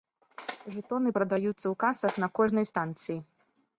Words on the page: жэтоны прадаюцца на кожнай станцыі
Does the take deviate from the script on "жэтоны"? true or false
false